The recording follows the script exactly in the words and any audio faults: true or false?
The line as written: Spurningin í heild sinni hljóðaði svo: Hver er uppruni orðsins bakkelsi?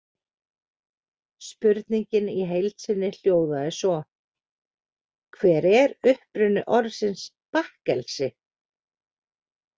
true